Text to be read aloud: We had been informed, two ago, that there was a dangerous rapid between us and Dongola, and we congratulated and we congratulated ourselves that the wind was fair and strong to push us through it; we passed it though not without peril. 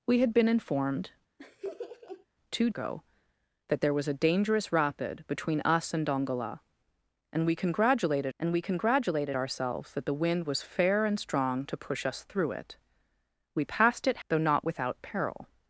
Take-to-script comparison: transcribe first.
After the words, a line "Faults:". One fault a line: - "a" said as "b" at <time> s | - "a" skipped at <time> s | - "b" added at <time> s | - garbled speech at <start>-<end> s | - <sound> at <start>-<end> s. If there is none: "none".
We had been informed, two ago, that there was a dangerous rapid between us and Dongola, and we congratulated and we congratulated ourselves that the wind was fair and strong to push us through it; we passed it though not without peril.
Faults:
- laugh at 1.4-2.3 s